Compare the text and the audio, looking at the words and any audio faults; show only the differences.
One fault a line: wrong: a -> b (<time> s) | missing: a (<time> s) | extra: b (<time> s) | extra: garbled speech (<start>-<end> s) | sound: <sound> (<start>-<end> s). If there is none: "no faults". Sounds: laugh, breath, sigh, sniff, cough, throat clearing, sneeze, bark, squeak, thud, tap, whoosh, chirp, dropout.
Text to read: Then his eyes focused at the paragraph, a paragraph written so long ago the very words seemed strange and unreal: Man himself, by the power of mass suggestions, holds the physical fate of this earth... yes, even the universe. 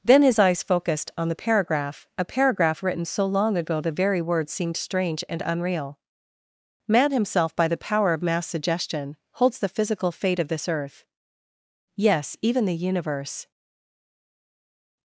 wrong: at -> on (1.1 s)
wrong: suggestions -> suggestion (8.5 s)